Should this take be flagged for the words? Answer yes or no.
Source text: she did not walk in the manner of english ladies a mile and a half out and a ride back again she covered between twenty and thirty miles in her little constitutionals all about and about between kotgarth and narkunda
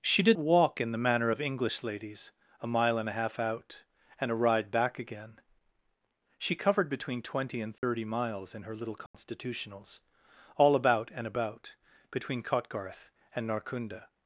yes